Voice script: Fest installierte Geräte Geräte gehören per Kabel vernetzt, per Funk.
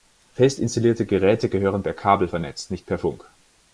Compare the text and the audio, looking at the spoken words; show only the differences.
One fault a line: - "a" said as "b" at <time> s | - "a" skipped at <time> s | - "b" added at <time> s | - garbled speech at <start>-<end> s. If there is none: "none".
- "Geräte" skipped at 1.5 s
- "nicht" added at 2.7 s